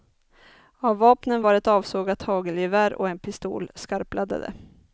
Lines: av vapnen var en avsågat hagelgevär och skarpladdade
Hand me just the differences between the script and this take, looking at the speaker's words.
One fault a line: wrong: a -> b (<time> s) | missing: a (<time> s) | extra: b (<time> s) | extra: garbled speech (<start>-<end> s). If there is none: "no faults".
wrong: en -> ett (1.5 s)
extra: en pistol (3.1 s)